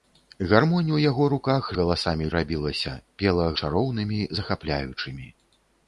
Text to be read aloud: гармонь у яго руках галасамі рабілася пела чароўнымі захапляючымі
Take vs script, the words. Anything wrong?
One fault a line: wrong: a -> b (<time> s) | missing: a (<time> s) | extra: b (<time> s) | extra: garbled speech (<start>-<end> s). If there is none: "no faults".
no faults